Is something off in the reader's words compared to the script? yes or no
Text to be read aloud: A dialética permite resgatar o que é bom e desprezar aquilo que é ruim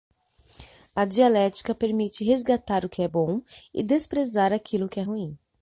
no